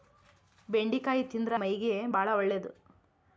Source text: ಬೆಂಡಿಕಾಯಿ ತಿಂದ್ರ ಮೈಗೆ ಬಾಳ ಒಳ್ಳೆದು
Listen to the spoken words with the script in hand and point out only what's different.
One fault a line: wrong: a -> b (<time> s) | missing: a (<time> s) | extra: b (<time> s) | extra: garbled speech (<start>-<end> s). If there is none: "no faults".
no faults